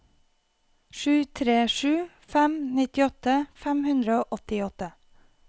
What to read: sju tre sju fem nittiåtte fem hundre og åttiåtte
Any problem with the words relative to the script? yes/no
no